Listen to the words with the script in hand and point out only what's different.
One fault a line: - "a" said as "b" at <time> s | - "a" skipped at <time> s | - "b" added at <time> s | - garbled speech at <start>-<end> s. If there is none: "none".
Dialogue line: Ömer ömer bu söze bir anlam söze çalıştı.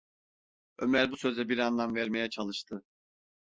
- "ömer" skipped at 1.1 s
- "söze" said as "vermeye" at 1.9 s